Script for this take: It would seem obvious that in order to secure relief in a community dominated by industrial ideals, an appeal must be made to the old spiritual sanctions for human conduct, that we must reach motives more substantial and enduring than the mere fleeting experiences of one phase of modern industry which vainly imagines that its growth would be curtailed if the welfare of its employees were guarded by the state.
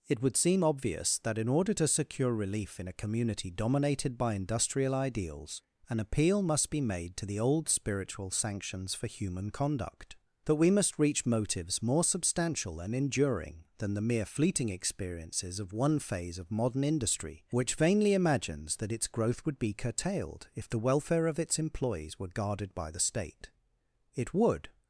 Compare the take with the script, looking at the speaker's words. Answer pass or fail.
fail